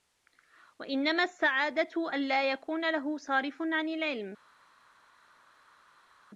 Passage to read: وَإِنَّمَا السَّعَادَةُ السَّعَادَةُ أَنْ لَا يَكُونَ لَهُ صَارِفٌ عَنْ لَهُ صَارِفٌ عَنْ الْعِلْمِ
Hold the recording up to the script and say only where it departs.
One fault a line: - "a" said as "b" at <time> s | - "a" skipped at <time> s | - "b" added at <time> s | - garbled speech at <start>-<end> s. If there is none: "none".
- "السَّعَادَةُ" skipped at 2.1 s
- "لَهُ صَارِفٌ عَنْ" skipped at 3.9 s